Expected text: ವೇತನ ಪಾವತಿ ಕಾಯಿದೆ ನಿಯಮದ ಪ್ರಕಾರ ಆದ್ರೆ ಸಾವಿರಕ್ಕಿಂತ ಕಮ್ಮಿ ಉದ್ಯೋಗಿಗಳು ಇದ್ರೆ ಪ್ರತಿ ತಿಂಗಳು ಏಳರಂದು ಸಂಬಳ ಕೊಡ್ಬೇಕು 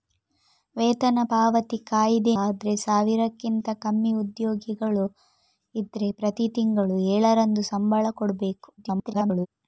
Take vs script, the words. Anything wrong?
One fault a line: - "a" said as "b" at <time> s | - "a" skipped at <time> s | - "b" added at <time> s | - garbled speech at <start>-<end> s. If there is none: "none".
- "ನಿಯಮದ ಪ್ರಕಾರ" skipped at 2.3 s
- garbled speech at 8.8-9.5 s